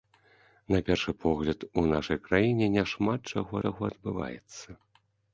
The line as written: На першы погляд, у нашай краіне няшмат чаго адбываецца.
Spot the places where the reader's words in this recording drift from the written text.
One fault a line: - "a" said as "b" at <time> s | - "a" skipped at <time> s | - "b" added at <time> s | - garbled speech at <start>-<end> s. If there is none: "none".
- "чаго" added at 3.6 s